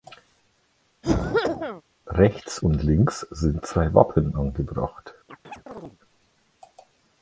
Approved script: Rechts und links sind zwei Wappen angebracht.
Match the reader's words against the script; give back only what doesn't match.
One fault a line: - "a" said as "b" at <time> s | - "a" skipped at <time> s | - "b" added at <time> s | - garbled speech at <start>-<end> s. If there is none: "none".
none